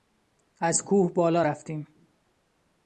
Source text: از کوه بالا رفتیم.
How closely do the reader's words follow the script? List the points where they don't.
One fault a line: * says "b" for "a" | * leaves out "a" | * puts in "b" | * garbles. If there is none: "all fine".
all fine